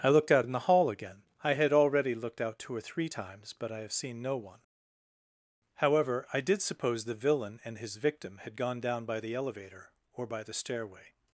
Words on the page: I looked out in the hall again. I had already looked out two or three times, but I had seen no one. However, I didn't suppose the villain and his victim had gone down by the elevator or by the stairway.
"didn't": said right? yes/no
no